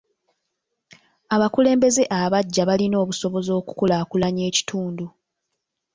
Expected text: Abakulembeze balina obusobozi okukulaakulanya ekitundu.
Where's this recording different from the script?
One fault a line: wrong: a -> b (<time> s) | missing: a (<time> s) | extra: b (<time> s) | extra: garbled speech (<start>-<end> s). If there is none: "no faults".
extra: abaggya (2.2 s)